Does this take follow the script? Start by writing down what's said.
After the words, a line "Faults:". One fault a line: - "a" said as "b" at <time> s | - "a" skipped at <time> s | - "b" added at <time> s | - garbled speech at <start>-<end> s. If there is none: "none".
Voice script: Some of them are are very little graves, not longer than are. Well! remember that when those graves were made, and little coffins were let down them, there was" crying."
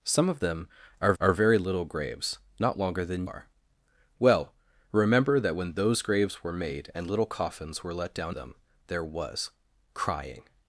Some of them are are very little graves, not longer than are. Well! remember that when those graves were made, and little coffins were let down them, there was" crying."
Faults:
none